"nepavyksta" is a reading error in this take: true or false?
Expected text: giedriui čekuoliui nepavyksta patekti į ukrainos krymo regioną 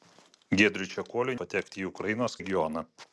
true